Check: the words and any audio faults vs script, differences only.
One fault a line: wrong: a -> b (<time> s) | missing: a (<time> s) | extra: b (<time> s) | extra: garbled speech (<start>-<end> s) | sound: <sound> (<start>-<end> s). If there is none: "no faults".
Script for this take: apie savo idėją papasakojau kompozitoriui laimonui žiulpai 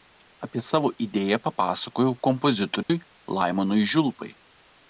sound: dropout (2.8-2.9 s)